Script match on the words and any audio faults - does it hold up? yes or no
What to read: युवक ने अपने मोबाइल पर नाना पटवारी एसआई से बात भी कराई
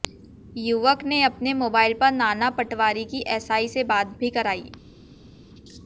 no